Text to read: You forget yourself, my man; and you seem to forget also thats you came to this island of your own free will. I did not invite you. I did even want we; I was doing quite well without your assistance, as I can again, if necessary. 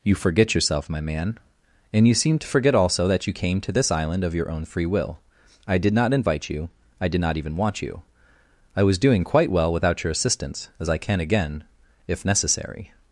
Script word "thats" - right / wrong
wrong